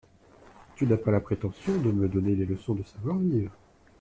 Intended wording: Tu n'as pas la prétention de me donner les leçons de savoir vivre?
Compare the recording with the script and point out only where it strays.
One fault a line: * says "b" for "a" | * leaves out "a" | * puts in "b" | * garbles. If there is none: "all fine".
all fine